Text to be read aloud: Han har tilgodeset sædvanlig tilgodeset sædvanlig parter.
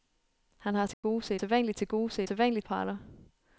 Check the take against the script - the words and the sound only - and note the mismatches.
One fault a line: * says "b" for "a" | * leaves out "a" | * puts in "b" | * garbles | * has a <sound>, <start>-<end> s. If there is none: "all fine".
* has a dropout, 0.9-1.0 s